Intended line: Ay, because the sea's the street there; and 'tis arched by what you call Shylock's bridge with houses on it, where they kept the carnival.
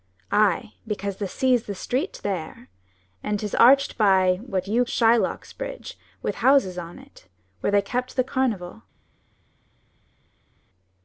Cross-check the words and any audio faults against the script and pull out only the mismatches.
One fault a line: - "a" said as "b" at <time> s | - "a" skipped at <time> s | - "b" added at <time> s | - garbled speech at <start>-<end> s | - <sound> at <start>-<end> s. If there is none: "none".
- "call" skipped at 4.8 s